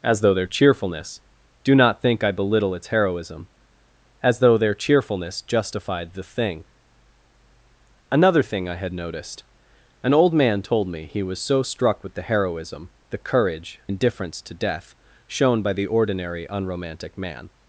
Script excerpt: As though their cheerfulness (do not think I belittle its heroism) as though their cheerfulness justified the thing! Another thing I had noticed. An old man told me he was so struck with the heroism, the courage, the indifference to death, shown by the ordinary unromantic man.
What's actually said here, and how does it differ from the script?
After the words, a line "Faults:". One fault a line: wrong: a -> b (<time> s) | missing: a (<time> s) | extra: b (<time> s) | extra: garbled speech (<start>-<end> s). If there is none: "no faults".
As though their cheerfulness (do not think I belittle its heroism) as though their cheerfulness justified the thing! Another thing I had noticed. An old man told me he was so struck with the heroism, the courage, indifference to death, shown by the ordinary unromantic man.
Faults:
missing: the (13.8 s)